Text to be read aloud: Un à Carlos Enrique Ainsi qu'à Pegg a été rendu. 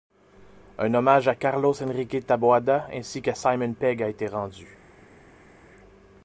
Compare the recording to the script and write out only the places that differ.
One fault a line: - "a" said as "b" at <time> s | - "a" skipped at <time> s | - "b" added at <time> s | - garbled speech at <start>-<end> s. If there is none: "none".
- "hommage" added at 0.9 s
- "Taboada" added at 2.2 s
- "Simon" added at 3.4 s